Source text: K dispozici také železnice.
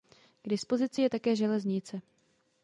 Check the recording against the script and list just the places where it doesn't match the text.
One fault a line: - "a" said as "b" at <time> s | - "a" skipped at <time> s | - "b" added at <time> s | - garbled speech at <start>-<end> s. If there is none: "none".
- "je" added at 1.0 s